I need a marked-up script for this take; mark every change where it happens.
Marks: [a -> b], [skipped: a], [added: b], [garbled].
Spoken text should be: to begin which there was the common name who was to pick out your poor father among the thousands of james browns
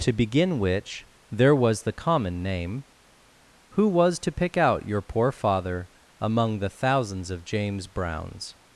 to begin which there was the common name who was to pick out your poor father among the thousands of james browns